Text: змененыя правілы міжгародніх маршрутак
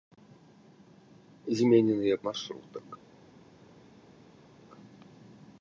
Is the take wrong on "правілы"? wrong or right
wrong